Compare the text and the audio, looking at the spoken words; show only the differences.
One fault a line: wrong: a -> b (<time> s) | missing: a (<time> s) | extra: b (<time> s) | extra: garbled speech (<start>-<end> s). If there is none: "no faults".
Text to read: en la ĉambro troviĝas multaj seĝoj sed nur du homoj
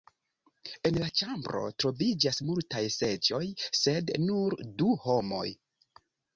no faults